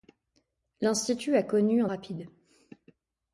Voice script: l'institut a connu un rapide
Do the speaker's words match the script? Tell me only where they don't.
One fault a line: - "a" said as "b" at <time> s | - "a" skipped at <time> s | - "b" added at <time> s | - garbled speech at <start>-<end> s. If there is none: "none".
none